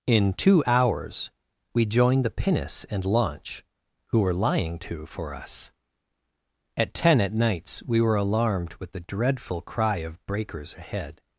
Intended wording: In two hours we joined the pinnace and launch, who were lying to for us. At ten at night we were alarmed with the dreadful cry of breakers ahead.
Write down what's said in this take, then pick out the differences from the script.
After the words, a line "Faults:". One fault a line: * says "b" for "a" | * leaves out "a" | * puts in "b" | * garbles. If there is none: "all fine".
In two hours we joined the pinnace and launch, who were lying to for us. At ten at nights we were alarmed with the dreadful cry of breakers ahead.
Faults:
* says "nights" for "night"